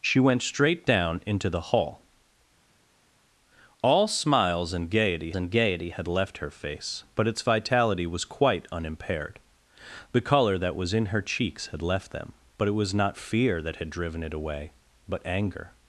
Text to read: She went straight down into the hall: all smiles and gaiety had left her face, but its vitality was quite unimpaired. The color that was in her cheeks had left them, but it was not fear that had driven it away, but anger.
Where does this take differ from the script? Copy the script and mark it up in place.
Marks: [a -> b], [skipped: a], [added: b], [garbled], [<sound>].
She went straight down into the hall: all smiles and gaiety [added: and gaiety] had left her face, but its vitality was quite unimpaired. The color that was in her cheeks had left them, but it was not fear that had driven it away, but anger.